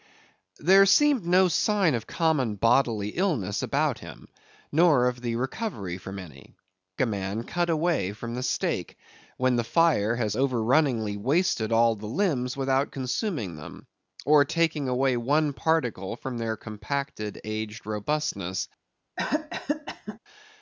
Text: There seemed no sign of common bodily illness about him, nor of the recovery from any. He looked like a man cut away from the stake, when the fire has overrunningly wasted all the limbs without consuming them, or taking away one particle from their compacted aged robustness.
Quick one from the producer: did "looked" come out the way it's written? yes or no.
no